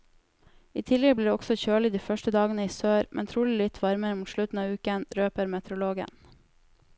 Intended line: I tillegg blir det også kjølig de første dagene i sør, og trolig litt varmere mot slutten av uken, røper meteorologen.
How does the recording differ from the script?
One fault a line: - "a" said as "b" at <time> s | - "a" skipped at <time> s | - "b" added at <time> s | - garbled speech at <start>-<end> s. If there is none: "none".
- "og" said as "men" at 3.2 s